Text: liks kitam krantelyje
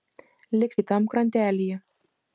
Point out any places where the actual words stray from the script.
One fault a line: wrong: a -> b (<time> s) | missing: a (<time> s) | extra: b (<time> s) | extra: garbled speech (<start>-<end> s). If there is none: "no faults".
no faults